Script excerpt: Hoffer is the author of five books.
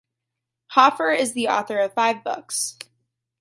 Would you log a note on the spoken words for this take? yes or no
no